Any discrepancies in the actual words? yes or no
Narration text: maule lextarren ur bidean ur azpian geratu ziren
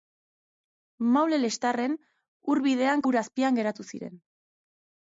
no